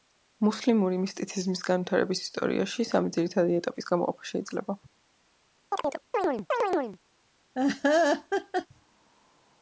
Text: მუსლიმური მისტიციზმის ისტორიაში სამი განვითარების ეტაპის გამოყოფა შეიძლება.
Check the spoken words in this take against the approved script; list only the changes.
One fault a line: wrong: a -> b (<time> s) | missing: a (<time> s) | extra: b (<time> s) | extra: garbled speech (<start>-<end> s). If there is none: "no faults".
extra: განვითარების (1.7 s)
wrong: განვითარების -> ძირითადი (3.2 s)